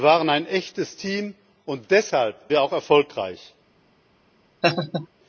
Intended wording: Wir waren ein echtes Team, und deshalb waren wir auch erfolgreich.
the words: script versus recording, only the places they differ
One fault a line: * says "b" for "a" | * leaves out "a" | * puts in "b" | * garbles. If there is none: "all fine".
* leaves out "waren"